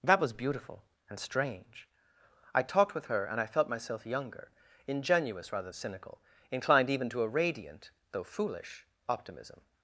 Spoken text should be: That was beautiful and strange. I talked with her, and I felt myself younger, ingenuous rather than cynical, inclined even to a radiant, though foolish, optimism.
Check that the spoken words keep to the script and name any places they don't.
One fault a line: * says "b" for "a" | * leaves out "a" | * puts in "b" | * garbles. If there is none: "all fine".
* leaves out "than"